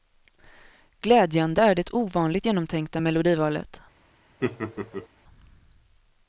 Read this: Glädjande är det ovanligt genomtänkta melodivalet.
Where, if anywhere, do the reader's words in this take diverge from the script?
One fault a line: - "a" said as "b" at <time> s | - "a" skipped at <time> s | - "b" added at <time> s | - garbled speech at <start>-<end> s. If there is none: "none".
none